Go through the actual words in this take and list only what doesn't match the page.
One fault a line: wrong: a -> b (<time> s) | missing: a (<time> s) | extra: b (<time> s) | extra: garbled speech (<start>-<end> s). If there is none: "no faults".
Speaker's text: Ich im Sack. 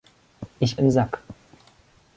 no faults